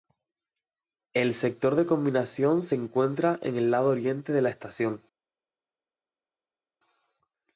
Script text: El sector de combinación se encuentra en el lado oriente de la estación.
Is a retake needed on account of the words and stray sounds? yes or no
no